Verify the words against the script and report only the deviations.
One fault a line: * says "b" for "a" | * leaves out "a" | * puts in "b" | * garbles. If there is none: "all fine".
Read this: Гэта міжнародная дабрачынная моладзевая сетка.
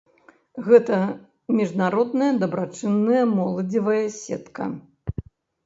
all fine